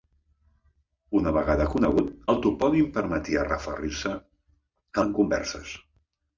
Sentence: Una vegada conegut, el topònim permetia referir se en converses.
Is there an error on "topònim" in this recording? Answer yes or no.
no